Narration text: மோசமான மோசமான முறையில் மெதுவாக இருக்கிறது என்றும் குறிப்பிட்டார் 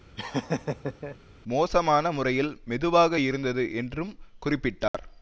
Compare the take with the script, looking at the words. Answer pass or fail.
fail